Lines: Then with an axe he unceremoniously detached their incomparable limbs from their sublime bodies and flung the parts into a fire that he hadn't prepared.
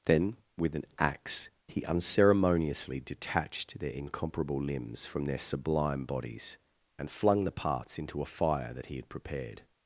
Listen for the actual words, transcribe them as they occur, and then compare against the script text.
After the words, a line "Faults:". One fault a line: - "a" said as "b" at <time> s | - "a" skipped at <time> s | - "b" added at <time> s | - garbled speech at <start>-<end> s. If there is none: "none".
Then with an axe he unceremoniously detached their incomparable limbs from their sublime bodies and flung the parts into a fire that he had prepared.
Faults:
- "hadn't" said as "had" at 9.0 s